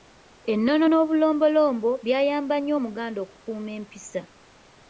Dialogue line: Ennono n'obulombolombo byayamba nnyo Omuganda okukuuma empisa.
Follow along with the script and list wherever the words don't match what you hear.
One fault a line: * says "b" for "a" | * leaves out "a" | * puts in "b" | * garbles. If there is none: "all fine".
all fine